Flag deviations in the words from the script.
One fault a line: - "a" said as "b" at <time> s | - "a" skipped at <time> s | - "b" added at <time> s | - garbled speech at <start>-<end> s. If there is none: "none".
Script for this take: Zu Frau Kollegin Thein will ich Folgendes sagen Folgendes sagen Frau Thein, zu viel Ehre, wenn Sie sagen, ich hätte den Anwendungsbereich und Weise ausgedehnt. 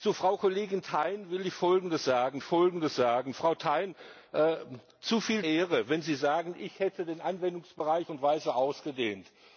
none